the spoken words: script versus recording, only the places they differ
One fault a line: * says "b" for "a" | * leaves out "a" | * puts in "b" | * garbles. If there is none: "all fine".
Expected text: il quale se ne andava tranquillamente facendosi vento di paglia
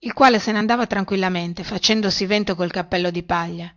* puts in "col cappello"